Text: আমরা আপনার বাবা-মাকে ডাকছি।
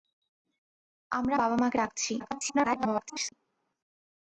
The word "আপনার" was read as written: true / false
false